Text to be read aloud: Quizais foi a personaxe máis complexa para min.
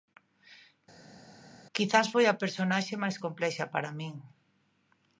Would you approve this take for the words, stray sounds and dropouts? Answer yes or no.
yes